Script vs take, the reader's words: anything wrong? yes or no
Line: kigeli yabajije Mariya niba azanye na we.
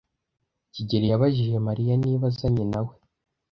no